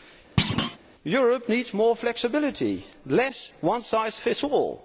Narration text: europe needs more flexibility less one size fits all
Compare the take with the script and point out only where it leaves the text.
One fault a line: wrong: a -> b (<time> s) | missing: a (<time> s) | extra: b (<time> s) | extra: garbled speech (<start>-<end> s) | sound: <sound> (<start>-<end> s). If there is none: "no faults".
sound: thud (0.4-0.8 s)